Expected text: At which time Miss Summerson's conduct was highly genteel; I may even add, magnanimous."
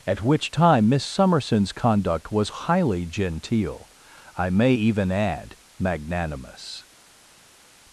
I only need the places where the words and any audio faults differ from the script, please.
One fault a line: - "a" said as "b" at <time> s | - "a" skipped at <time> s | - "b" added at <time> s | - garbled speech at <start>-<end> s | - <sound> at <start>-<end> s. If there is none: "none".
none